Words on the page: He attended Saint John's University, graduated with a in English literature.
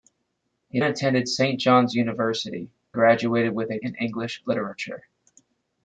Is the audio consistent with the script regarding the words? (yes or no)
yes